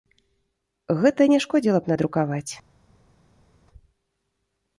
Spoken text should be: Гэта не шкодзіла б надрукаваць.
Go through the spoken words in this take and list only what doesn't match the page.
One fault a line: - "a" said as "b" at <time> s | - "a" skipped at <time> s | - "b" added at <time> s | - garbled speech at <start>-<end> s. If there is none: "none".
none